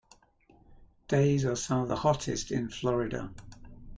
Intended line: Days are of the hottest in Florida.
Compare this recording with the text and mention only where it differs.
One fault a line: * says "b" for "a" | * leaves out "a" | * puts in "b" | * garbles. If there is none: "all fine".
* puts in "some"